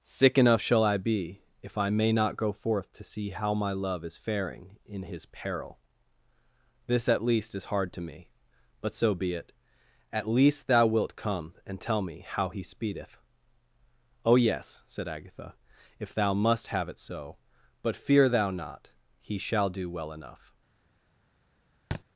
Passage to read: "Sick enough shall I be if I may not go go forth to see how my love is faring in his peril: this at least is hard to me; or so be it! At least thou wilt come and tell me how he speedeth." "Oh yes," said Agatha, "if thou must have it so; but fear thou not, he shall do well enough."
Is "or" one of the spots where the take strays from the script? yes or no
yes